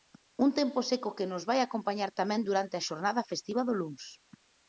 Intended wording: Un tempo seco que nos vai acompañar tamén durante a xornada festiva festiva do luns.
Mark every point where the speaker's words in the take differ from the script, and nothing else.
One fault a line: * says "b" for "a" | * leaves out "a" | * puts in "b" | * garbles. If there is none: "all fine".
* leaves out "festiva"